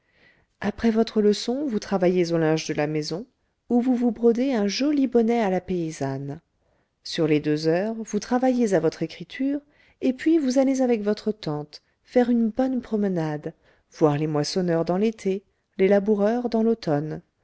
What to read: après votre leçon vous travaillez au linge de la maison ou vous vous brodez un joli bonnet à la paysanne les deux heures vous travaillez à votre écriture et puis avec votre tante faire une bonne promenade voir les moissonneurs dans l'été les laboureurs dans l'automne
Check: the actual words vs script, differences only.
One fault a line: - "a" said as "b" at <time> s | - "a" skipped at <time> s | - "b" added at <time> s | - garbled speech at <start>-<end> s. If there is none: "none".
- "sur" added at 7.0 s
- "vous allez" added at 10.4 s